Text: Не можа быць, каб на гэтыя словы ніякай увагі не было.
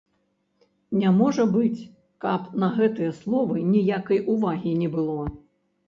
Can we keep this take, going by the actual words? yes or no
yes